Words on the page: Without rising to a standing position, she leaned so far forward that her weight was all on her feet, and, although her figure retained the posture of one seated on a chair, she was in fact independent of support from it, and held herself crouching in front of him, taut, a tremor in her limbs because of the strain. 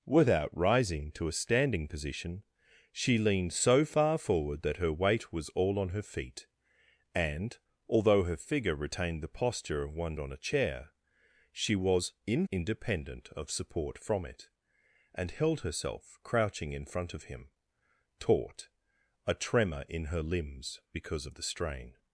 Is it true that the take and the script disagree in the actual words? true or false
true